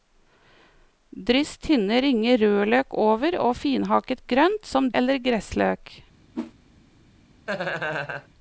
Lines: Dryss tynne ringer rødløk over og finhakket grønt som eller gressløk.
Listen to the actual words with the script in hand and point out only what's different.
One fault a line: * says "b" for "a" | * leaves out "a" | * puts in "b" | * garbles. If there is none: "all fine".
all fine